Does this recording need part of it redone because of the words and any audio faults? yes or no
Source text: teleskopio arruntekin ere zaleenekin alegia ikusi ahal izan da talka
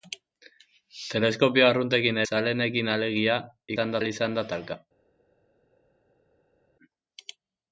yes